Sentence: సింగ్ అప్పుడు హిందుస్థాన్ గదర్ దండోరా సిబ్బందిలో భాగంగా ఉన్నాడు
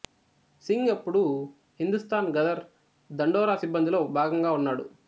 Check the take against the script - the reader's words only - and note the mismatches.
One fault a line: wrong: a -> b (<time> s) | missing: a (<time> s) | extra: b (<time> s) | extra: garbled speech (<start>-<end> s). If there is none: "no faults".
no faults